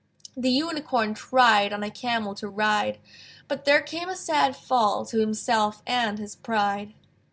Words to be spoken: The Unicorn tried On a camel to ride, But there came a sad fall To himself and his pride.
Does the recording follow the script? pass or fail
pass